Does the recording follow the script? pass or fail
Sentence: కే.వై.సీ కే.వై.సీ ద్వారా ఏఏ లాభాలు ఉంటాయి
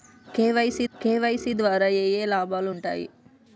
pass